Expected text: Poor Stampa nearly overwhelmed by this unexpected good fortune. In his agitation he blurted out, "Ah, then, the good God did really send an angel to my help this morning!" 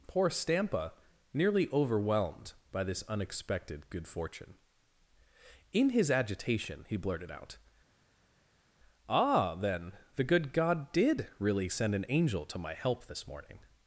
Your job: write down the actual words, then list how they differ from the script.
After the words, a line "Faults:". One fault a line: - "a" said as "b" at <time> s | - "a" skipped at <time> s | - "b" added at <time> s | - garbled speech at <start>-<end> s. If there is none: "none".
Poor Stampa nearly overwhelmed by this unexpected good fortune. In his agitation he blurted out, "Ah, then, the good God did really send an angel to my help this morning!"
Faults:
none